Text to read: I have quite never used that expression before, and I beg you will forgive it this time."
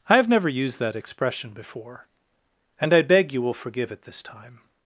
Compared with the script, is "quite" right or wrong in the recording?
wrong